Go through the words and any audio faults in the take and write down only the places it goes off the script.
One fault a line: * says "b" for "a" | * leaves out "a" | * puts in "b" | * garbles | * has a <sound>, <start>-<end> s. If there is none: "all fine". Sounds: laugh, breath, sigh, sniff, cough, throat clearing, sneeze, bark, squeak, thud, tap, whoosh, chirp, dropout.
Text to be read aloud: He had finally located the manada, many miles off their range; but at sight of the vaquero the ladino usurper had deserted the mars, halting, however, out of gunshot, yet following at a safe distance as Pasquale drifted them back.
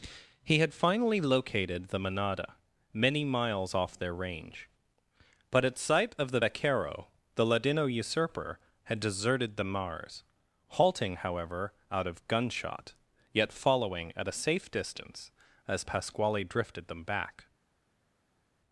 all fine